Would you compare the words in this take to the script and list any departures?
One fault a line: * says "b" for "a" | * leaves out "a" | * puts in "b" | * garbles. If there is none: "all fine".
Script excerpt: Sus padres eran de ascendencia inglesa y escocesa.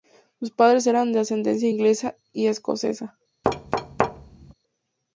all fine